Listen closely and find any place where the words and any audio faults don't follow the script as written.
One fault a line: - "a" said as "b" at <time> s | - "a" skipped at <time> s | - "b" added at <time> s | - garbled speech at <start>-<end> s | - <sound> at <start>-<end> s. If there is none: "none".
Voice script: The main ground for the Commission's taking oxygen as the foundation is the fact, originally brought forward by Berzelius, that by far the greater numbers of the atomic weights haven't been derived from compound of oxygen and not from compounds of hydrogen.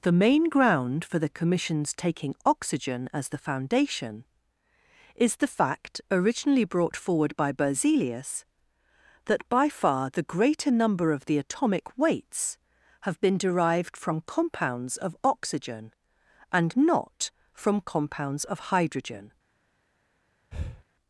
- "numbers" said as "number" at 10.7 s
- "haven't" said as "have" at 13.0 s
- "compound" said as "compounds" at 14.2 s
- breath at 20.5-20.8 s